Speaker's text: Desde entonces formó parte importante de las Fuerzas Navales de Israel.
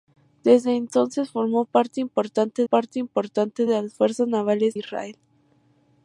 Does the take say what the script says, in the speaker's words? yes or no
no